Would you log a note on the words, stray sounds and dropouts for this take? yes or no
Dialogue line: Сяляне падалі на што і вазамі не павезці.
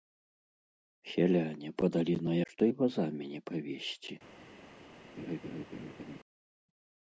yes